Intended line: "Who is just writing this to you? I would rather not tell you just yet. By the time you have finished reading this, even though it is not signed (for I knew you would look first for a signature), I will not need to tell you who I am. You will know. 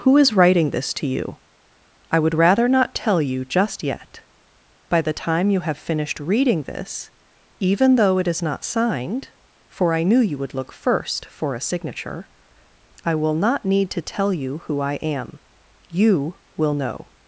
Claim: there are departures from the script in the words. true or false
true